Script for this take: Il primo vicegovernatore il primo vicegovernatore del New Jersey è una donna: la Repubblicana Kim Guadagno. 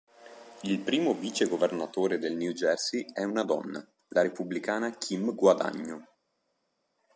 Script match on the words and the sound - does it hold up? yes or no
no